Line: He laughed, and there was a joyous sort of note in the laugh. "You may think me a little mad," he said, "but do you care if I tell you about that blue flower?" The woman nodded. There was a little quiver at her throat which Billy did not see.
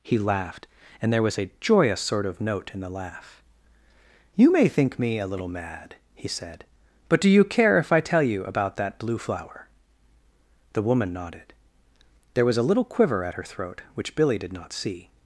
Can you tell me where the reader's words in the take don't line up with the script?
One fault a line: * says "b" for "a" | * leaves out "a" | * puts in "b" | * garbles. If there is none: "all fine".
all fine